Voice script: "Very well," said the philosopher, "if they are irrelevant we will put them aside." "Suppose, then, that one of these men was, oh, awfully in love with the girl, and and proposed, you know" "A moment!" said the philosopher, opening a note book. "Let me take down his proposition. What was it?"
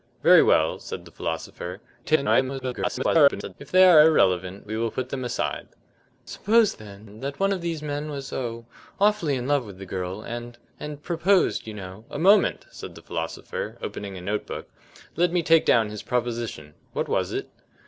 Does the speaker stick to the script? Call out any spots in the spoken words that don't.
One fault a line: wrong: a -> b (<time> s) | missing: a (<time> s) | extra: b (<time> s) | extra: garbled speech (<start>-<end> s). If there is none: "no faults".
extra: garbled speech (2.0-3.5 s)